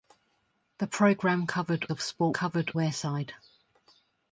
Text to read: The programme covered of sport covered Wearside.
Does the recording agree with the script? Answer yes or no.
yes